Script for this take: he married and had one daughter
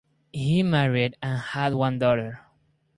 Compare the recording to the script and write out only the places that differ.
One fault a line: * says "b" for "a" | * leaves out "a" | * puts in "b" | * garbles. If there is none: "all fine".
all fine